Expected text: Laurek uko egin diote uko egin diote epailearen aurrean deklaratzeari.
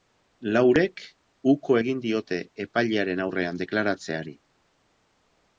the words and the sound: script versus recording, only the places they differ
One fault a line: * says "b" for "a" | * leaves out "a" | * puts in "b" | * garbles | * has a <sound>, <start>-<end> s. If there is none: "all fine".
* leaves out "uko egin diote"